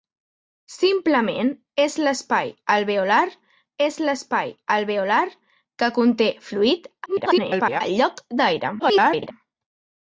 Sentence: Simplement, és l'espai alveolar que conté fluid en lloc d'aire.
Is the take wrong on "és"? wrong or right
right